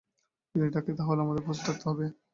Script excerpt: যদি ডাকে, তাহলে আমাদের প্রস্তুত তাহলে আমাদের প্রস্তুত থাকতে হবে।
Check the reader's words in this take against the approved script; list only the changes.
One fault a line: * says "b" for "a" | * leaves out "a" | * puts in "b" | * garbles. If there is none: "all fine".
* leaves out "তাহলে আমাদের প্রস্তুত"